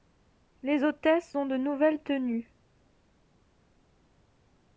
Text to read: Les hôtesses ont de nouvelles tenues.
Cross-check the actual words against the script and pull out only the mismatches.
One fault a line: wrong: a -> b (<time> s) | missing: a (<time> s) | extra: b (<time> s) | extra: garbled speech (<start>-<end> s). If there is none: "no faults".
no faults